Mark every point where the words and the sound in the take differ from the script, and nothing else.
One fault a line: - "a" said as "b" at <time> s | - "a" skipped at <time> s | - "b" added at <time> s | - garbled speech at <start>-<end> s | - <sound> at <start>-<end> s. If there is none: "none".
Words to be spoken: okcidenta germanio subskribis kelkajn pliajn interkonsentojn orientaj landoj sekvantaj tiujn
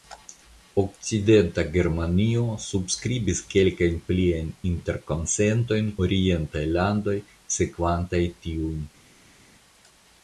none